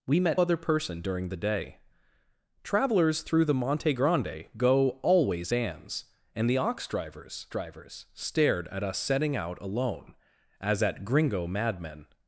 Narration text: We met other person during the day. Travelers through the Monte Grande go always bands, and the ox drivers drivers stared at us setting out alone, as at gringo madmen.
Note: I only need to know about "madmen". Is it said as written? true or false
true